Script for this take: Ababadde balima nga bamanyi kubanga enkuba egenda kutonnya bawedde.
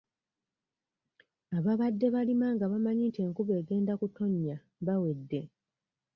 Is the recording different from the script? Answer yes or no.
yes